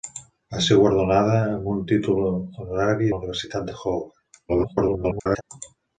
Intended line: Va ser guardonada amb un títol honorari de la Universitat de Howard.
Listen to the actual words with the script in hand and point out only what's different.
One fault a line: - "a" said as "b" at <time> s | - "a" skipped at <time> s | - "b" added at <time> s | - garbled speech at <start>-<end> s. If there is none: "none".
- "de" skipped at 3.1 s
- garbled speech at 4.5-5.4 s